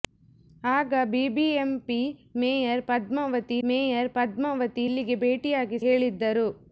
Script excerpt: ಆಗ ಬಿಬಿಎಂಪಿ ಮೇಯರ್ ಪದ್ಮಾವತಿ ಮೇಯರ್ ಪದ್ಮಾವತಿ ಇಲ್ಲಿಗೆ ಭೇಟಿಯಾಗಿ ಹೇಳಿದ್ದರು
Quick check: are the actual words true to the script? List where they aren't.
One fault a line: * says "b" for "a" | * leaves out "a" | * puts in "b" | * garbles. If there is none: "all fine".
all fine